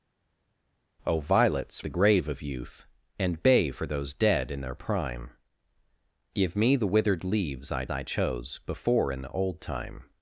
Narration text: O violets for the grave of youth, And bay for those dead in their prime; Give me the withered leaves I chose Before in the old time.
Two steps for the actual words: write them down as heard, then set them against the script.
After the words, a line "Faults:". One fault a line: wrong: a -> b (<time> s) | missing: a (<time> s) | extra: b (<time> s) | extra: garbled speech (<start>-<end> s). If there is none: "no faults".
O violets the grave of youth, And bay for those dead in their prime; Give me the withered leaves I I chose Before in the old time.
Faults:
missing: for (1.8 s)
extra: I (7.9 s)